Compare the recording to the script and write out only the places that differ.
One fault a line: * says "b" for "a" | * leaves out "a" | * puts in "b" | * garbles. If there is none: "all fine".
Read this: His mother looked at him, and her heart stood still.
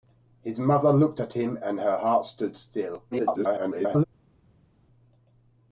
* garbles